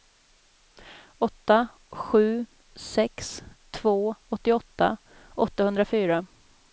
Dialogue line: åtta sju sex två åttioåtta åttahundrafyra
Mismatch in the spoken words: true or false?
false